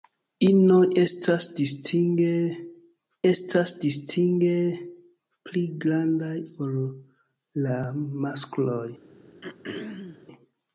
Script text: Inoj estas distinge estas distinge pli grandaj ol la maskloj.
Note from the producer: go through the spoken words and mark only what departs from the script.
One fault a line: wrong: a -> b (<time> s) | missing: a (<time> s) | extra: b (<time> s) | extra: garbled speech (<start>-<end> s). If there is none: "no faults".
no faults